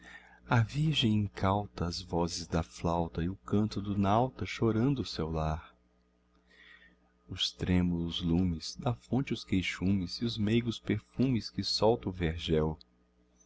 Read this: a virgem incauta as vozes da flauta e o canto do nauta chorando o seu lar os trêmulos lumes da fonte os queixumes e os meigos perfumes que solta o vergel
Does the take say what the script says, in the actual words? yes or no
yes